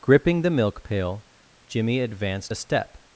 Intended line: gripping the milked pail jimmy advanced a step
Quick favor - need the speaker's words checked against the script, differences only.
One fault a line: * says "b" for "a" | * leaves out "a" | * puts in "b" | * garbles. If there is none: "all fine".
* says "milk" for "milked"